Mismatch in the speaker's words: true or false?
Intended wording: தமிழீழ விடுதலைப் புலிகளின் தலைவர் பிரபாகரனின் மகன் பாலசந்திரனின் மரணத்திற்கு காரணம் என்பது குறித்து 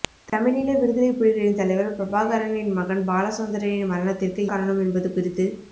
false